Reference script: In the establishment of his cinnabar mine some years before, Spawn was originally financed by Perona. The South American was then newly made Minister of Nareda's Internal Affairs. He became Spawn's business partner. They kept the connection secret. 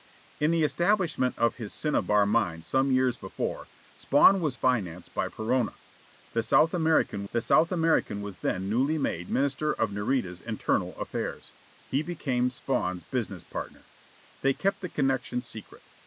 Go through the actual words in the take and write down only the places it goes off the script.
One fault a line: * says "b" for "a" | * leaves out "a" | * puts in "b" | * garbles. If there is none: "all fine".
* leaves out "originally"
* puts in "the South American"